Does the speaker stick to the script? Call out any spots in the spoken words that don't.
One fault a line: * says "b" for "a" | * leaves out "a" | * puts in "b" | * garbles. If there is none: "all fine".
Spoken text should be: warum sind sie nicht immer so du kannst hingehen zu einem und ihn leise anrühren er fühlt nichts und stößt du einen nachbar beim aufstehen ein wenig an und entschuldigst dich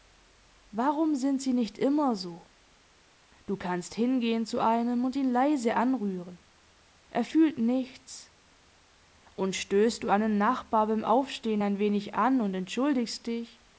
all fine